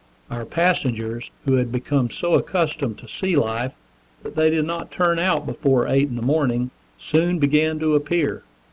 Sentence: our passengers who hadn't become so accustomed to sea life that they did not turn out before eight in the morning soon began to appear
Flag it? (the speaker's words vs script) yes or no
yes